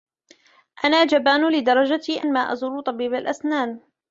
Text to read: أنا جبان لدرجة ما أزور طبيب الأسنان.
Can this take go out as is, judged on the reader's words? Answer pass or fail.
pass